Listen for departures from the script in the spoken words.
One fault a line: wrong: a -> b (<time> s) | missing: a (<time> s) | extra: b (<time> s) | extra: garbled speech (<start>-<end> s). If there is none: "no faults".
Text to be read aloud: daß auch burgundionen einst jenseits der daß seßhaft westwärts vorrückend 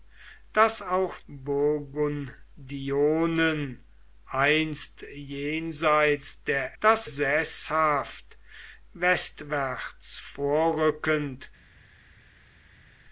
no faults